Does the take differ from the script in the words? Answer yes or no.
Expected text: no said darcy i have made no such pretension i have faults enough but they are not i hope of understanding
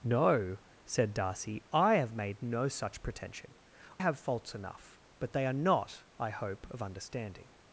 yes